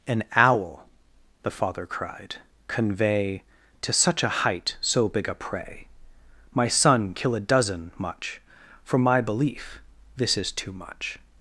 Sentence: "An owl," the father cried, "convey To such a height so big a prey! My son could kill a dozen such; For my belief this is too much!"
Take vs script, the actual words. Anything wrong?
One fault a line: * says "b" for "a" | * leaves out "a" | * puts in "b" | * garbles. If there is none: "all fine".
* leaves out "could"
* says "much" for "such"